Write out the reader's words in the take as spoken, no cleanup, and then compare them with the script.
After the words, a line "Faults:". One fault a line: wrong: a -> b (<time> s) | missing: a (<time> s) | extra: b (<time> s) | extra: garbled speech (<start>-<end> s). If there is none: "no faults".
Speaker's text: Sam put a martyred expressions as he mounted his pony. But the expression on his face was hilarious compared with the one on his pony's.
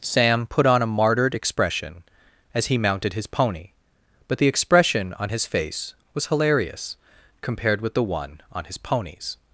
Sam put on a martyred expression as he mounted his pony. But the expression on his face was hilarious compared with the one on his pony's.
Faults:
extra: on (0.7 s)
wrong: expressions -> expression (1.4 s)